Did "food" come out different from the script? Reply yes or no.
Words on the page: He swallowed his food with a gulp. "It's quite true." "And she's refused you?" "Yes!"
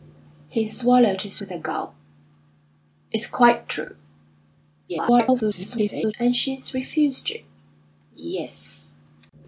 yes